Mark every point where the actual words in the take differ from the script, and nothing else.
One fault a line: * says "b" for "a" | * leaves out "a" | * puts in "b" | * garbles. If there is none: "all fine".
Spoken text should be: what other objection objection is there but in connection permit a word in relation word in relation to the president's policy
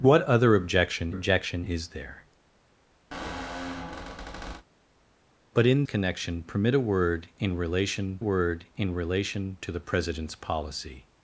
all fine